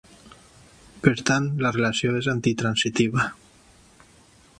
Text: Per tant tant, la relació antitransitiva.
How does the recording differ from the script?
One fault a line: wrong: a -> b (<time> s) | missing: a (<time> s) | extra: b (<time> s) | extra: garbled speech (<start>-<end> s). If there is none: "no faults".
missing: tant (1.5 s)
extra: és (2.2 s)